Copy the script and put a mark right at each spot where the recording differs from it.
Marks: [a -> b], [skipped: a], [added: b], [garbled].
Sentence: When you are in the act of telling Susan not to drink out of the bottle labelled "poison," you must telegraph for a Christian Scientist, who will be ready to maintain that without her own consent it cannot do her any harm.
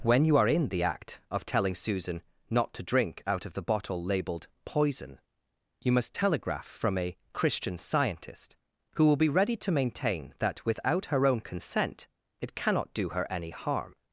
When you are in the act of telling Susan not to drink out of the bottle labelled "poison," you must telegraph [for -> from] a Christian Scientist, who will be ready to maintain that without her own consent it cannot do her any harm.